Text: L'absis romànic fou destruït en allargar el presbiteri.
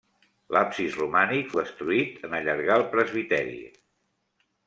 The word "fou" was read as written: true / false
false